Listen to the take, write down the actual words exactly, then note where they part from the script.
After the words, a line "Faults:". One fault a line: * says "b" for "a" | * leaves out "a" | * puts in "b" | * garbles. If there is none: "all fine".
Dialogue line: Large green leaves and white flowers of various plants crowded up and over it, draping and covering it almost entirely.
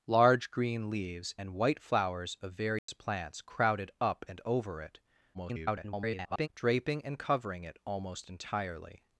Large green leaves and white flowers of various plants crowded up and over it, [garbled] draping and covering it almost entirely.
Faults:
* garbles